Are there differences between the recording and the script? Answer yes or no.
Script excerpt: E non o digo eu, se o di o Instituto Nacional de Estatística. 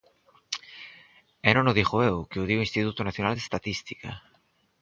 yes